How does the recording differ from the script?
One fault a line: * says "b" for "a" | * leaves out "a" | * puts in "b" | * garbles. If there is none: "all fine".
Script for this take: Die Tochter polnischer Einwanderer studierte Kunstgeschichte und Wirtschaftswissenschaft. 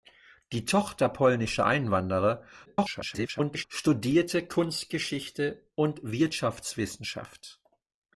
* garbles